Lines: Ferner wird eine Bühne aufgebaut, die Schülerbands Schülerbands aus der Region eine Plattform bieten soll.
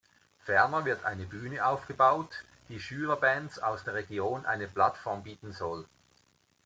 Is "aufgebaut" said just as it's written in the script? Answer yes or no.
yes